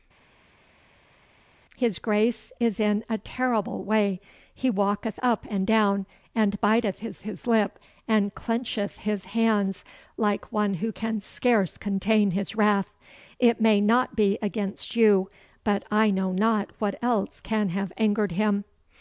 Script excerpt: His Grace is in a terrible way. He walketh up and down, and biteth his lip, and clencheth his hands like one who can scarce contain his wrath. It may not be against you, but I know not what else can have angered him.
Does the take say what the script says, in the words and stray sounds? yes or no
no